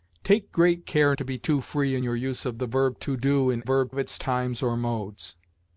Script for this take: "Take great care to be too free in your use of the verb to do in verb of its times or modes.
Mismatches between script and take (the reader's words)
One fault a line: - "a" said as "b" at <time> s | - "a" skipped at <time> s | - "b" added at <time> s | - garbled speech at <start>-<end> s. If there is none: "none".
none